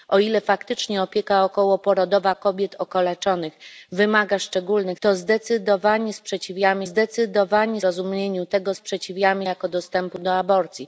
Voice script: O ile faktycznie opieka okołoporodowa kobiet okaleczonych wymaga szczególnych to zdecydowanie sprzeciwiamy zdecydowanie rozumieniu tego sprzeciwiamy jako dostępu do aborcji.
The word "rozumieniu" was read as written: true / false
true